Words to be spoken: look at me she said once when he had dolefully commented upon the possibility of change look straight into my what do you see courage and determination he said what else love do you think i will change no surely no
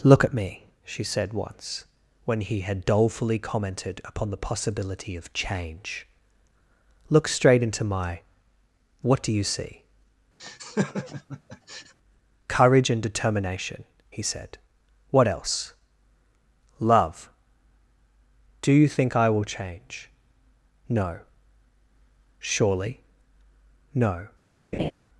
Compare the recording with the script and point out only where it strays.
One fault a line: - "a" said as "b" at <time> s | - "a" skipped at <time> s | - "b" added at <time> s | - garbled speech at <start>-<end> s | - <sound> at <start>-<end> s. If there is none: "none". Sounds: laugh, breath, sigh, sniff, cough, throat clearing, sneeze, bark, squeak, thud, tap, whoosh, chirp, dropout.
- laugh at 10.4-11.9 s
- laugh at 24.7-24.9 s